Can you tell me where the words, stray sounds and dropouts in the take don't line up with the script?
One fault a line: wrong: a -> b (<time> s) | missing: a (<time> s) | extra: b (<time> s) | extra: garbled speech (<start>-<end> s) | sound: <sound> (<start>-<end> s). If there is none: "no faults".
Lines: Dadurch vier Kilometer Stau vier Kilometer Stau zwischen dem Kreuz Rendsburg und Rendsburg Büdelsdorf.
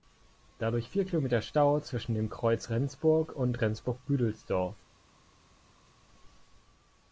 missing: vier Kilometer Stau (1.8 s)